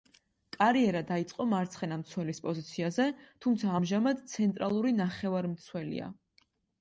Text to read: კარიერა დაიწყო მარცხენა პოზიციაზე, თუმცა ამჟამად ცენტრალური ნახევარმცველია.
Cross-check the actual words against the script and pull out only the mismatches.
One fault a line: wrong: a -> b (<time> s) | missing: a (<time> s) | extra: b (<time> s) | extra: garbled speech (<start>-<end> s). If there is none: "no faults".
extra: მცველის (2.0 s)